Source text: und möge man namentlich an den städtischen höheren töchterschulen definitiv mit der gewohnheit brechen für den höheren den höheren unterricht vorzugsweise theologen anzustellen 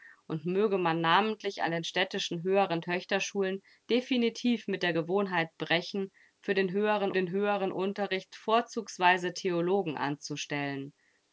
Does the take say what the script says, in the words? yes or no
yes